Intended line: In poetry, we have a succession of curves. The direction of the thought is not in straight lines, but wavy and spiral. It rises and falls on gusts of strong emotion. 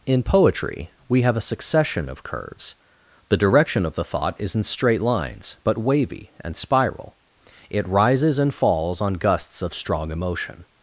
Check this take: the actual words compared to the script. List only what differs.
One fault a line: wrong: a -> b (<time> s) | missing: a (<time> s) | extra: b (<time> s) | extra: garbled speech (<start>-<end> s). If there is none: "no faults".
missing: not (4.5 s)